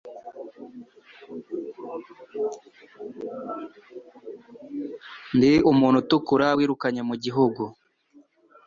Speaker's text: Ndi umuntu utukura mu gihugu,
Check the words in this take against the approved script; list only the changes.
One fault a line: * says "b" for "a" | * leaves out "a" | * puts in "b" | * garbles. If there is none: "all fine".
* puts in "wirukanye"